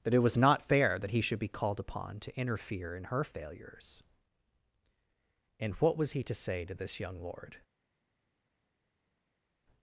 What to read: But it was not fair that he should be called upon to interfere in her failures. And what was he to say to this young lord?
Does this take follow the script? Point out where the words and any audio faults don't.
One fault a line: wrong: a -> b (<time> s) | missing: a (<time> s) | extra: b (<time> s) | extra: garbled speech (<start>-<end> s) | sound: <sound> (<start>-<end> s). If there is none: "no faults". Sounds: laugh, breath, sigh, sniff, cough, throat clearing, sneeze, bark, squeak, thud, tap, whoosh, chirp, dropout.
wrong: But -> That (0.0 s)